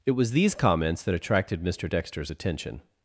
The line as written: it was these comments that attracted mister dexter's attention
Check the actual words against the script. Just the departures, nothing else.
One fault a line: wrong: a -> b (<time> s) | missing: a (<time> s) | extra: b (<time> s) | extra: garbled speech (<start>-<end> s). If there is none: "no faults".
no faults